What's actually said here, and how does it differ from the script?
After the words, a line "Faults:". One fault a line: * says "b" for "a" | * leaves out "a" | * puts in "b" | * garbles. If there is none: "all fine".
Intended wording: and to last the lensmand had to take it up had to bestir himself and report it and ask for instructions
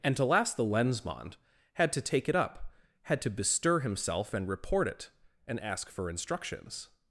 and to last the lensmand had to take it up had to bestir himself and report it and ask for instructions
Faults:
all fine